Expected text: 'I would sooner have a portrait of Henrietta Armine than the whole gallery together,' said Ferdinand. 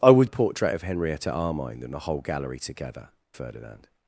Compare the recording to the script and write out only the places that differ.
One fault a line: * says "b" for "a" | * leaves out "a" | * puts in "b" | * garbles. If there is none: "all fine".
* leaves out "sooner have"
* leaves out "said"